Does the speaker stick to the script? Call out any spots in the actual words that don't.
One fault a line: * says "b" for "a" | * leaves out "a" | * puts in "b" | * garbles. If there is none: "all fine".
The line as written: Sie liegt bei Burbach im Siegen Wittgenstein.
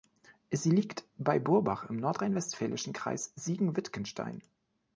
* puts in "nordrhein westfälischen Kreis"